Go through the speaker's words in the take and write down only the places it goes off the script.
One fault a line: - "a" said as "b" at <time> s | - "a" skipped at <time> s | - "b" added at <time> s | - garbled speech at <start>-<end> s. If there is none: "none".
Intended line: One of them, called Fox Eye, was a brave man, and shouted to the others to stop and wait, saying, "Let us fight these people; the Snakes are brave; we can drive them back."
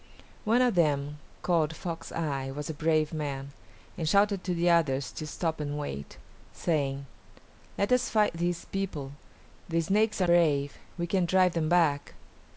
none